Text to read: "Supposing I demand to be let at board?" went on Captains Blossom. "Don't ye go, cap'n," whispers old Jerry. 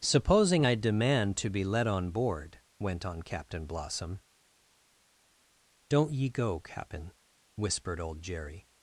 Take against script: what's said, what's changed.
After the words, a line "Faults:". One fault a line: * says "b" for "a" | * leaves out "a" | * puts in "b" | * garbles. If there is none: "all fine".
"Supposing I demand to be let on board?" went on Captain Blossom. "Don't ye go, cap'n," whispered old Jerry.
Faults:
* says "on" for "at"
* says "Captain" for "Captains"
* says "whispered" for "whispers"